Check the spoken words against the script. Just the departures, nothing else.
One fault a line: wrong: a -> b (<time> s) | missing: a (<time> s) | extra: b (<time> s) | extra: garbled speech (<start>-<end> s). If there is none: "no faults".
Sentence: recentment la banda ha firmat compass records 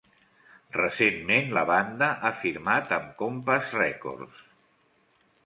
extra: amb (3.0 s)